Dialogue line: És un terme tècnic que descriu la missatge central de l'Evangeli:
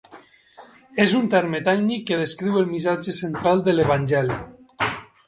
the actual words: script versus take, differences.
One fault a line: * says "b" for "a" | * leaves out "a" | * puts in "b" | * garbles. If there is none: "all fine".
* says "el" for "la"